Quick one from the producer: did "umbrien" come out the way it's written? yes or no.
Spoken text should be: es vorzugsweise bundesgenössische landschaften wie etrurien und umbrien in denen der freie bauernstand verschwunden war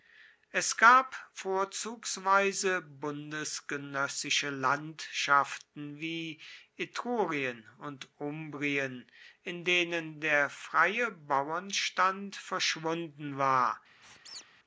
yes